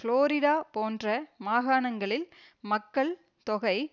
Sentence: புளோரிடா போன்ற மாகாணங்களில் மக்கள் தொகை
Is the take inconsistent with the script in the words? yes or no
no